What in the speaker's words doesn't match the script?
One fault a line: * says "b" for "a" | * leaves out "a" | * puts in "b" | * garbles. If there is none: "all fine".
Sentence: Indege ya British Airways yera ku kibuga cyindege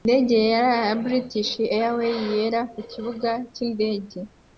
* puts in "yera"